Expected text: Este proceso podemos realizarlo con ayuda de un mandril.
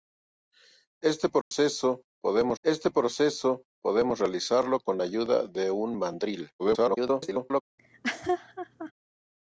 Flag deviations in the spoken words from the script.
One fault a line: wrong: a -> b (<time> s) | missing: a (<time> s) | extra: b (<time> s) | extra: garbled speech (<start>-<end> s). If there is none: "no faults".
extra: este proceso podemos (2.6 s)
extra: garbled speech (6.6-7.6 s)